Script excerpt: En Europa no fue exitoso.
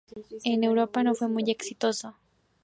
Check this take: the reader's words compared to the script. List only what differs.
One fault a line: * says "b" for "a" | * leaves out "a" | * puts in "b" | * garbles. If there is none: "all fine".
* puts in "muy"